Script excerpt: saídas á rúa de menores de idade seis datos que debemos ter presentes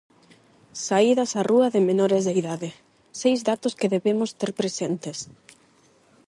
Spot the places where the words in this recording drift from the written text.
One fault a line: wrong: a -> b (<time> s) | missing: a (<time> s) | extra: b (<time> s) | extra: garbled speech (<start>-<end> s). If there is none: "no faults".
no faults